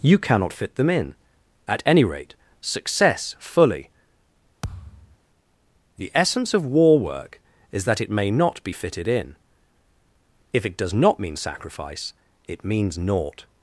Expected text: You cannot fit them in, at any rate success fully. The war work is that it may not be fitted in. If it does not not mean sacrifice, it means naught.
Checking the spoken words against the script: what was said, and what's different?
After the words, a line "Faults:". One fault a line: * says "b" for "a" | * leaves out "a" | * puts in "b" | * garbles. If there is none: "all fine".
You cannot fit them in, at any rate success fully. The essence of war work is that it may not be fitted in. If it does not mean sacrifice, it means naught.
Faults:
* puts in "essence of"
* leaves out "not"